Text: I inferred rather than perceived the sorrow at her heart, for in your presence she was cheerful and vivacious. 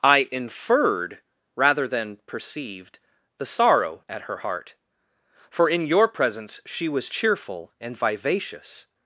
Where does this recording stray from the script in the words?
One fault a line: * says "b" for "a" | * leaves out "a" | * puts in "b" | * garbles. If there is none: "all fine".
all fine